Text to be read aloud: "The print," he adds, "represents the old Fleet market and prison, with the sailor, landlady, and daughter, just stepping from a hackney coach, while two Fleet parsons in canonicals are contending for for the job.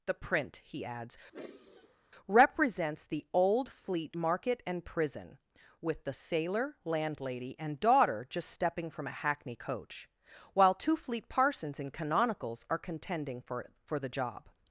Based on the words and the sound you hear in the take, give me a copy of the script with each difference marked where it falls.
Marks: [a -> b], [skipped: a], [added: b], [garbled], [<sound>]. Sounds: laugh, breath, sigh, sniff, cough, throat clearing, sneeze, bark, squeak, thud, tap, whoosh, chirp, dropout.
"The print," he adds, [sigh] "represents the old Fleet market and prison, with the sailor, landlady, and daughter, just stepping from a hackney coach, while two Fleet parsons in canonicals are contending for for the job.